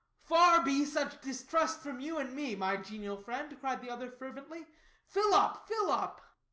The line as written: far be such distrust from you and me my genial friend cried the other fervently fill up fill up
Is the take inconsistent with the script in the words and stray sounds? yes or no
no